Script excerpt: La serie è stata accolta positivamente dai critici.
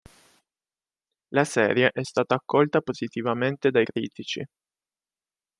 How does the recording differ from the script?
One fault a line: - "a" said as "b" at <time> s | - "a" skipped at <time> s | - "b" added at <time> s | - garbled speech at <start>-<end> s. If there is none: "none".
none